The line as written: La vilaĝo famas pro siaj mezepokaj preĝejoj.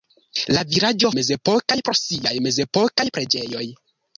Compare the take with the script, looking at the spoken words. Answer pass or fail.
fail